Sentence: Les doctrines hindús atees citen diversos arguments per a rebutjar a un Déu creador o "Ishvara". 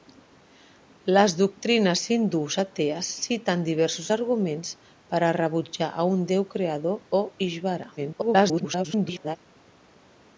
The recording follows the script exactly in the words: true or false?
false